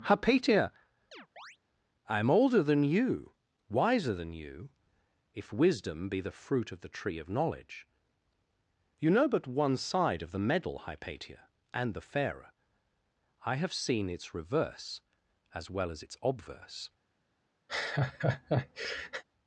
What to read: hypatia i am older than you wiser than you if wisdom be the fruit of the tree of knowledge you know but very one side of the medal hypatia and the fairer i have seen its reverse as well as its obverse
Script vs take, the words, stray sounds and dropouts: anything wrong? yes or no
yes